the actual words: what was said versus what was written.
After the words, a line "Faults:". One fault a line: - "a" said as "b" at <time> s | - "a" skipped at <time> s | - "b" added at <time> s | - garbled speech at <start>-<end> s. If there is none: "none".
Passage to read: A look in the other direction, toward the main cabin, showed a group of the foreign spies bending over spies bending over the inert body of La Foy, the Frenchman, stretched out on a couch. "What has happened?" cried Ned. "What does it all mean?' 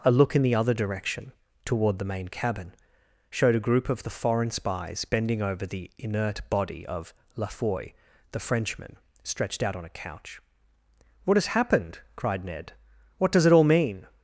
A look in the other direction, toward the main cabin, showed a group of the foreign spies bending over the inert body of La Foy, the Frenchman, stretched out on a couch. "What has happened?" cried Ned. "What does it all mean?'
Faults:
- "spies bending over" skipped at 5.7 s